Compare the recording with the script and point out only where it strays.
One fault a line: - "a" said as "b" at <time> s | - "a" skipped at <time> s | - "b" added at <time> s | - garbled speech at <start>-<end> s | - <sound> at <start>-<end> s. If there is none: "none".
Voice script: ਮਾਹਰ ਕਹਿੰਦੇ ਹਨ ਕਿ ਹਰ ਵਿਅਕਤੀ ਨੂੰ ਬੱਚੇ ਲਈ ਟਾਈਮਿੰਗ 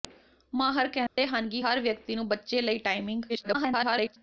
- dropout at 1.1-1.2 s
- garbled speech at 3.3-4.2 s